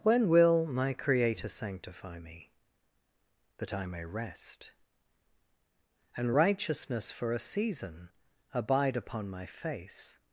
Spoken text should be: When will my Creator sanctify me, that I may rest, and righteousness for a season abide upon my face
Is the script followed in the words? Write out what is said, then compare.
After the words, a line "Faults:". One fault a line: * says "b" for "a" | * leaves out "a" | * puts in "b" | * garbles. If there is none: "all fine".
When will my Creator sanctify me, that I may rest, and righteousness for a season abide upon my face
Faults:
all fine